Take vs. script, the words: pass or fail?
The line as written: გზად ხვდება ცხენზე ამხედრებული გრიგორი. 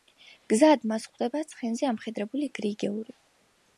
fail